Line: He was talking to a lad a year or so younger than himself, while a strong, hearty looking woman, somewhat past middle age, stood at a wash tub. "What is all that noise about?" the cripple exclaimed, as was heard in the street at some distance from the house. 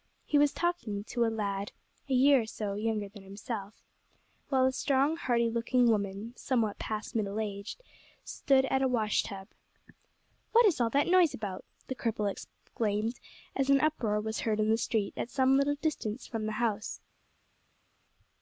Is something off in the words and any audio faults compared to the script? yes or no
yes